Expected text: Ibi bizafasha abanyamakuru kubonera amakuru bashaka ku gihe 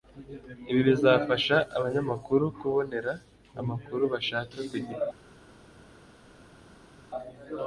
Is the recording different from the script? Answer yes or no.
no